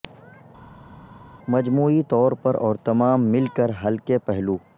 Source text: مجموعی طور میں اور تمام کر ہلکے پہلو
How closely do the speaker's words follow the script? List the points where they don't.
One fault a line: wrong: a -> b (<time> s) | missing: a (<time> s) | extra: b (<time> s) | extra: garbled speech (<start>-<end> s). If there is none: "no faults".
wrong: میں -> پر (2.4 s)
extra: مل (3.3 s)